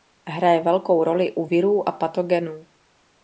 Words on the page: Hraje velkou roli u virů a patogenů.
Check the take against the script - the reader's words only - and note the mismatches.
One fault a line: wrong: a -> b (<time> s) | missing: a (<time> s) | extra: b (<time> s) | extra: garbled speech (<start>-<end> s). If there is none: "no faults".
no faults